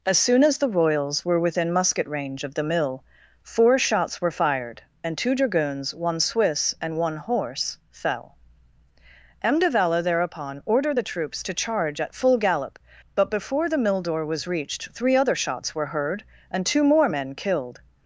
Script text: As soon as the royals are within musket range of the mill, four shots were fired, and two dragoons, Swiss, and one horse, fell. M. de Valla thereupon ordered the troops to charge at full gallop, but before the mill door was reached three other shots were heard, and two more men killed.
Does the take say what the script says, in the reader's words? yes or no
no